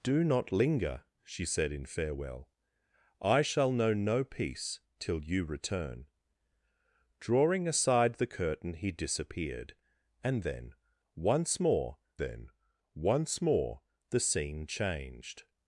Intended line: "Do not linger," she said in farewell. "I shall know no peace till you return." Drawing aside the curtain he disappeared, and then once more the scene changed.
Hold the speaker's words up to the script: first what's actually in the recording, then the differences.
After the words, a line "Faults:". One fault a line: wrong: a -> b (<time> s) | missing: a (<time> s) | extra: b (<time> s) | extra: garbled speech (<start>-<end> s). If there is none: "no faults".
"Do not linger," she said in farewell. "I shall know no peace till you return." Drawing aside the curtain he disappeared, and then once more then once more the scene changed.
Faults:
extra: then once more (12.2 s)